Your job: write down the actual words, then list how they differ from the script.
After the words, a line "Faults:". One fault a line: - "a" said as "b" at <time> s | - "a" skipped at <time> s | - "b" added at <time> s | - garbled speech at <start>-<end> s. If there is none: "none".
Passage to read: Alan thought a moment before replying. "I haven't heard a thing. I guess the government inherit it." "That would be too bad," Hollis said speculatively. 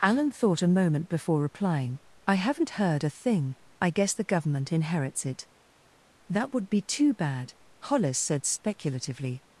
Alan thought a moment before replying. "I haven't heard a thing. I guess the government inherits it." "That would be too bad," Hollis said speculatively.
Faults:
- "inherit" said as "inherits" at 4.7 s